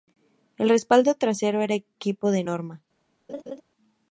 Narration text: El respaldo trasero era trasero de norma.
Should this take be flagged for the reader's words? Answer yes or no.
yes